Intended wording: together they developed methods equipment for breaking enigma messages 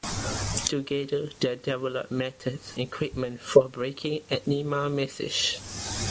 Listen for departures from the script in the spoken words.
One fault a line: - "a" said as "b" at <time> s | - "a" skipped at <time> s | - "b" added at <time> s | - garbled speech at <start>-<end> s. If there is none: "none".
none